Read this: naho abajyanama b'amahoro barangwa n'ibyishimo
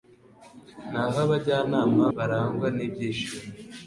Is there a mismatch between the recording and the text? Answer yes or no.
yes